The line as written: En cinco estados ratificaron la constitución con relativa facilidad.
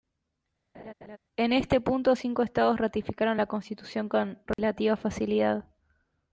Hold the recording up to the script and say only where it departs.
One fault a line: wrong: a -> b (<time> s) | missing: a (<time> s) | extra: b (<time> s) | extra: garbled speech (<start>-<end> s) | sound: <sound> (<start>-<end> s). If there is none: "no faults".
sound: laugh (0.7-1.2 s)
extra: este punto (1.5 s)
sound: dropout (4.5-4.6 s)